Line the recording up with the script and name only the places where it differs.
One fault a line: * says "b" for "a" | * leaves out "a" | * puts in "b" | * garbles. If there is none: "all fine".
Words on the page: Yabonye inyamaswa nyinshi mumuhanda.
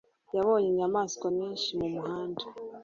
all fine